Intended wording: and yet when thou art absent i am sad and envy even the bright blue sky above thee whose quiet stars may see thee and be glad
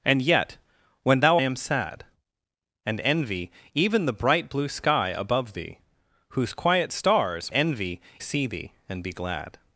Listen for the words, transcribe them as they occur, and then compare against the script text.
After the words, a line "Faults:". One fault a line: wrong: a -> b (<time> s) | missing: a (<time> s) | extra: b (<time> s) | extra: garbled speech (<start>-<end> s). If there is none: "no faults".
and yet when thou am sad and envy even the bright blue sky above thee whose quiet stars envy see thee and be glad
Faults:
missing: art absent i (1.4 s)
wrong: may -> envy (7.5 s)